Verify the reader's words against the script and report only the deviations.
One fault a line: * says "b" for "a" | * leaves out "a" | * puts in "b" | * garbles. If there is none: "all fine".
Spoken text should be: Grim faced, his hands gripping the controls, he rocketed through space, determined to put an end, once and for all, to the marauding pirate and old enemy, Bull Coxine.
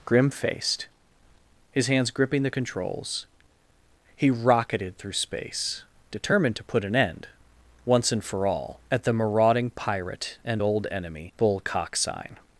* says "at" for "to"